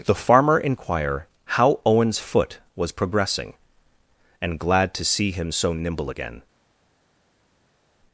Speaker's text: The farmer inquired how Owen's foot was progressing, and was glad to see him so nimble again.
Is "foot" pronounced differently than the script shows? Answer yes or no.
no